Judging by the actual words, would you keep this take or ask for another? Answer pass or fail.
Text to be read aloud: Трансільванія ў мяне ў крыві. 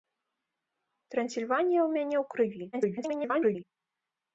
fail